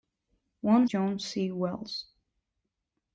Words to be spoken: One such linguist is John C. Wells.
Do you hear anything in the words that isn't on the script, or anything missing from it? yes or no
yes